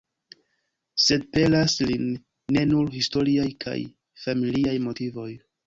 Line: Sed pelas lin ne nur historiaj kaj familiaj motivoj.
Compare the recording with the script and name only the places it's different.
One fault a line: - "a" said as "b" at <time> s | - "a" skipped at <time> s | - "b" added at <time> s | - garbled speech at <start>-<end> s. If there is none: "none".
none